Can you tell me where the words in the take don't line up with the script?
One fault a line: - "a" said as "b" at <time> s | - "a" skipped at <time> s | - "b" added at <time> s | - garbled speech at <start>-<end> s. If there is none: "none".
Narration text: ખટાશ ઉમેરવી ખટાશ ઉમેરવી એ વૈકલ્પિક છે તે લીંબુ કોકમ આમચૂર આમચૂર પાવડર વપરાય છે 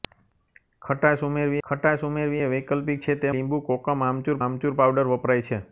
none